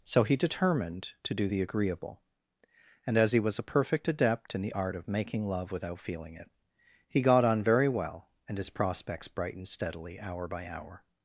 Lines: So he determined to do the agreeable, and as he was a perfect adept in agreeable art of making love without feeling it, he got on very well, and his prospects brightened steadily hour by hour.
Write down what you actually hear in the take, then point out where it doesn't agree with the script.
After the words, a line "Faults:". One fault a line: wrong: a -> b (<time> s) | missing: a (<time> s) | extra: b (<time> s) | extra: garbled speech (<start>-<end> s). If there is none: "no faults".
So he determined to do the agreeable, and as he was a perfect adept in the art of making love without feeling it, he got on very well, and his prospects brightened steadily hour by hour.
Faults:
wrong: agreeable -> the (4.6 s)